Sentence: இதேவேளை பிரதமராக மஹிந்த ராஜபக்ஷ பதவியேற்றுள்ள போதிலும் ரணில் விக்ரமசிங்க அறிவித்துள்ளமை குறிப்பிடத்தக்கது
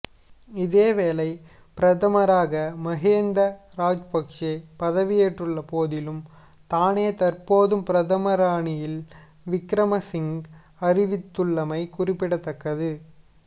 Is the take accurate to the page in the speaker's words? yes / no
no